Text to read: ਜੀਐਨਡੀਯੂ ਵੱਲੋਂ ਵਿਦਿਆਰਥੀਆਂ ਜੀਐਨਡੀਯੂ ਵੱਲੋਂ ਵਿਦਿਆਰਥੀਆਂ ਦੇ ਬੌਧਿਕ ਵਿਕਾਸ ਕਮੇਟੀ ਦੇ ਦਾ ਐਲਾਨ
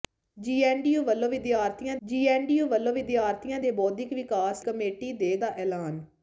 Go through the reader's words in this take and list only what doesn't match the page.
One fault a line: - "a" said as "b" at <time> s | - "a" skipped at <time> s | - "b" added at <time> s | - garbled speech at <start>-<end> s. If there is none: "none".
none